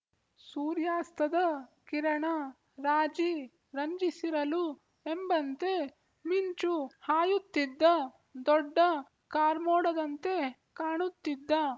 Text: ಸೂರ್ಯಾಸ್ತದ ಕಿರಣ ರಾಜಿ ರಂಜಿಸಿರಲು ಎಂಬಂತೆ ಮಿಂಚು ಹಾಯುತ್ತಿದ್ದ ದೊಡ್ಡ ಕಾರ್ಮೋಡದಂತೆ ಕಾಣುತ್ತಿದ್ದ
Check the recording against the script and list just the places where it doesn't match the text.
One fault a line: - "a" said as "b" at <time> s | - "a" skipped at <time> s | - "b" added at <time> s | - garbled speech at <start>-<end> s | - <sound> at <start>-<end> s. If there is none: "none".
none